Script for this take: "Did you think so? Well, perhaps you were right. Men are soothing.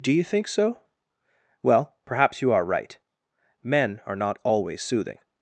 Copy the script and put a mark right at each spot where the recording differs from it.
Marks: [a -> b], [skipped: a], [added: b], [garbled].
["Did -> Do] you think so? Well, perhaps you [were -> are] right. Men are [added: not always] soothing.